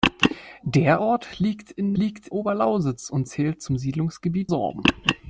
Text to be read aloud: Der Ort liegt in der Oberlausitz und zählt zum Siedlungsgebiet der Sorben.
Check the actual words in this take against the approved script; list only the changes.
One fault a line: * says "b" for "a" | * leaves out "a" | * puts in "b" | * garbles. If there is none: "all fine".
* says "liegt" for "der"
* leaves out "der"